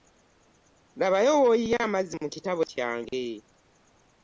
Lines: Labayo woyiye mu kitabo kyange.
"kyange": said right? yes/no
yes